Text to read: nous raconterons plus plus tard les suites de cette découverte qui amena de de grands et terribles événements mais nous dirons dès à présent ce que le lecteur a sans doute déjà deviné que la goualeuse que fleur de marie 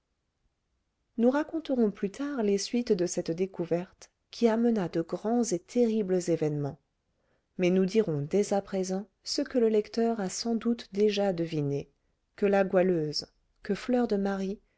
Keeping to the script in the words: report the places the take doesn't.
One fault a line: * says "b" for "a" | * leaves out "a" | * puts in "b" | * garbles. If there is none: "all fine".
* leaves out "plus"
* leaves out "de"